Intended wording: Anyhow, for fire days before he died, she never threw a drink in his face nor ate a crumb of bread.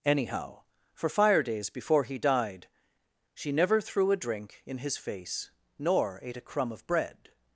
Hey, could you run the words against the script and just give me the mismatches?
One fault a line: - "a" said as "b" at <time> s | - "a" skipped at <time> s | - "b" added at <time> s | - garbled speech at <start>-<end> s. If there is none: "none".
none